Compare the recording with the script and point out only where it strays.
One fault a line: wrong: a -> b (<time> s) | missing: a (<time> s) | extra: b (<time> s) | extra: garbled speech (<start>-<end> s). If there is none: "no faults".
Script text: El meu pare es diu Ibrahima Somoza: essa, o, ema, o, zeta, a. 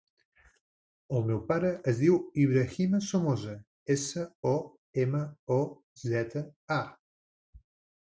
no faults